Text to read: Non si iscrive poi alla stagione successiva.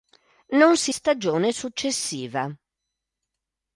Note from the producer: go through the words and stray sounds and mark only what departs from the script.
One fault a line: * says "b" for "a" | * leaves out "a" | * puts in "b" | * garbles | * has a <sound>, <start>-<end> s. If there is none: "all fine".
* leaves out "iscrive poi alla"